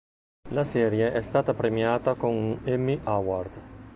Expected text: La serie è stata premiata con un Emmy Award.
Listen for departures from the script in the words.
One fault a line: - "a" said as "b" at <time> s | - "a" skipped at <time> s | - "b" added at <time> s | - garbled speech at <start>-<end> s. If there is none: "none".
none